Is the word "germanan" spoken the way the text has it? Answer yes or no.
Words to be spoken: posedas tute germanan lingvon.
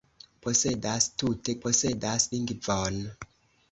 no